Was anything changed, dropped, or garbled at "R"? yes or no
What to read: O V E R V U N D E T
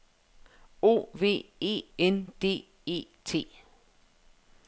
yes